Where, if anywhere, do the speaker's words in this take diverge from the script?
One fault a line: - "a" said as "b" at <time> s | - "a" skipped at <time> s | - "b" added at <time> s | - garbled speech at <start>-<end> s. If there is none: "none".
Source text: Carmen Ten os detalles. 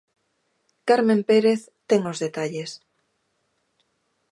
- "Pérez" added at 1.3 s